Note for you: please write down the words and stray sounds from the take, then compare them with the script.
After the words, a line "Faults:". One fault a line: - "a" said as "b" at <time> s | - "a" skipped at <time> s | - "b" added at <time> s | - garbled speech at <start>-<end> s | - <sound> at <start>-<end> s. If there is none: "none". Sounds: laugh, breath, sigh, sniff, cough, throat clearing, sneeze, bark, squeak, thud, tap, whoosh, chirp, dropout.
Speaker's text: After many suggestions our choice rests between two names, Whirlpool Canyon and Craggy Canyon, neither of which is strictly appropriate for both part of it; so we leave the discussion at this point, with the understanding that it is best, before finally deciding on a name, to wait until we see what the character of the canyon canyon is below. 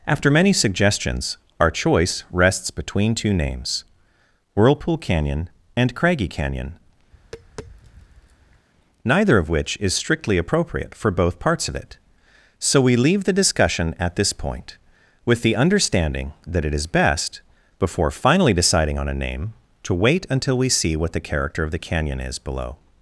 After many suggestions our choice rests between two names, Whirlpool Canyon and Craggy Canyon, neither of which is strictly appropriate for both parts of it; so we leave the discussion at this point, with the understanding that it is best, before finally deciding on a name, to wait until we see what the character of the canyon is below.
Faults:
- tap at 7.1-8.7 s
- "part" said as "parts" at 11.4 s
- "canyon" skipped at 22.2 s